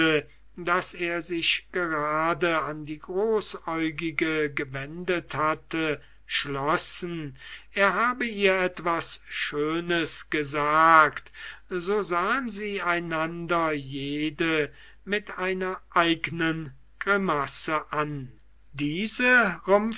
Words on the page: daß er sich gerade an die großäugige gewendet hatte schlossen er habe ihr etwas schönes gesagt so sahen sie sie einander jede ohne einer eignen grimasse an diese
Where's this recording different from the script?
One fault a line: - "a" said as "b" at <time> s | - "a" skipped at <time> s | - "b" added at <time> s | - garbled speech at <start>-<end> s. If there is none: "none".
- "sie" skipped at 12.8 s
- "ohne" said as "mit" at 15.0 s